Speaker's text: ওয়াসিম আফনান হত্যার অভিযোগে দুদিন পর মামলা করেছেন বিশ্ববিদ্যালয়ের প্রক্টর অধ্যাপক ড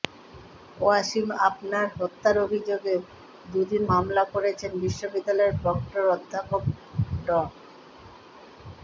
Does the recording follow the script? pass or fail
fail